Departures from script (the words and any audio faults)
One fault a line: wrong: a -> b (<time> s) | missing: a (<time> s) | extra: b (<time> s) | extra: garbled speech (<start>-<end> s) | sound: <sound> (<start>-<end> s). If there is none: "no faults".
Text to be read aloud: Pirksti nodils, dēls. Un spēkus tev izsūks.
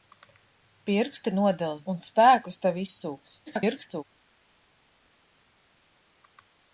missing: dēls (1.9 s)
extra: garbled speech (3.5-4.0 s)